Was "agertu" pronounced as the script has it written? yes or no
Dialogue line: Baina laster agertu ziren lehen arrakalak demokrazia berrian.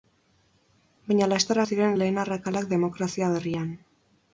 no